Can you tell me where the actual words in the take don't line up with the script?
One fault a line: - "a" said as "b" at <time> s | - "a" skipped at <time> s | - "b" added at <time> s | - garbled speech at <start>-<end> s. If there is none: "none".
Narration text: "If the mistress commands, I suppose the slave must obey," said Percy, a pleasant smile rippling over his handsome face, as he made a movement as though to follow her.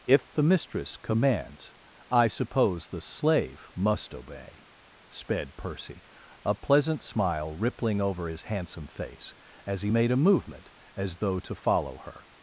- "said" said as "sped" at 5.1 s